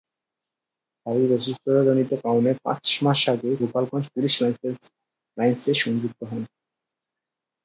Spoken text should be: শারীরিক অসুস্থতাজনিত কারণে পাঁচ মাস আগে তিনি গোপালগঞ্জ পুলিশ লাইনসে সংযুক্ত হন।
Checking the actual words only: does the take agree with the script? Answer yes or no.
no